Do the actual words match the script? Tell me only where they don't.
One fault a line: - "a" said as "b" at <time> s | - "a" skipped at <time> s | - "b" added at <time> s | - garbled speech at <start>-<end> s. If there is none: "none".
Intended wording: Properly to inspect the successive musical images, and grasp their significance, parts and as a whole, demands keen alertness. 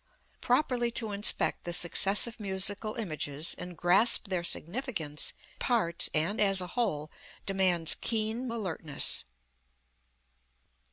none